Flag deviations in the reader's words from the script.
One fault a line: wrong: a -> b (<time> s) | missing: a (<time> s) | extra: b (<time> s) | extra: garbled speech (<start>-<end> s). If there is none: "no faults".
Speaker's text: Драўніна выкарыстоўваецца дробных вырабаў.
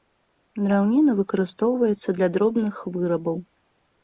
extra: для (2.2 s)